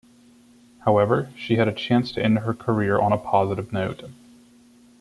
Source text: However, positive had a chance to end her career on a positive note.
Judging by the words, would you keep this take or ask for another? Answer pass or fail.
fail